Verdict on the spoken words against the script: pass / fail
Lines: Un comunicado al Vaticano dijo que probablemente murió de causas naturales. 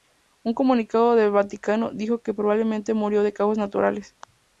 fail